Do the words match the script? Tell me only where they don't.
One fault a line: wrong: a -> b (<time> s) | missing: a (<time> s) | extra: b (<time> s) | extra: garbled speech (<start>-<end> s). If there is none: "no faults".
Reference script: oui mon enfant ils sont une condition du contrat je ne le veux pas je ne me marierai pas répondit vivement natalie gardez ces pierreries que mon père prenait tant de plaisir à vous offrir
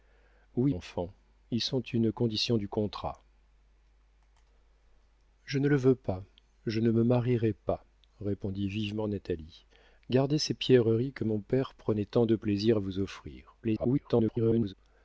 missing: mon (0.7 s)
extra: garbled speech (13.6-14.7 s)